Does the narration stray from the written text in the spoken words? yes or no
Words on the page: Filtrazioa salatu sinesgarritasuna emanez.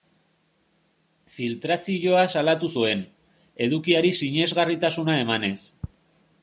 yes